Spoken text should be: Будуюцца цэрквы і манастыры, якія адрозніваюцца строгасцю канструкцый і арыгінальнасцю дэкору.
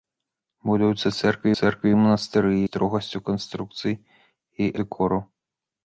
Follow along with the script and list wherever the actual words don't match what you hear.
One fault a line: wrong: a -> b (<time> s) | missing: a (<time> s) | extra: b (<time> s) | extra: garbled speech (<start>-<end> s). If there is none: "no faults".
extra: цэрквы (1.6 s)
missing: якія адрозніваюцца (2.5 s)
missing: арыгінальнасцю (4.6 s)